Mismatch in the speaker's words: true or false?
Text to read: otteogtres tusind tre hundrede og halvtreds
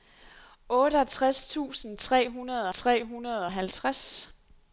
true